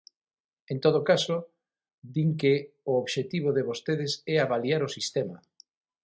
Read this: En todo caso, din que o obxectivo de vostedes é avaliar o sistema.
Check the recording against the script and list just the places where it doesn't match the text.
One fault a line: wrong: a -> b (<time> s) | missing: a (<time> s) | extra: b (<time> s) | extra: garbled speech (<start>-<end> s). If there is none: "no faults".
no faults